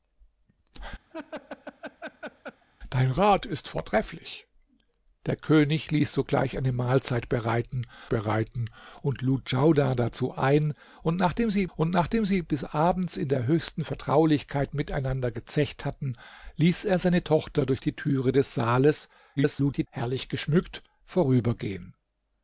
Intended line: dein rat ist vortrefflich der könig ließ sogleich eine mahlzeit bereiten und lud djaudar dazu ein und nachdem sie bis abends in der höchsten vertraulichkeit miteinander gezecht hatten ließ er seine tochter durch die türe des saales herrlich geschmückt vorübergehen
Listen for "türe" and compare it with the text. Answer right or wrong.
right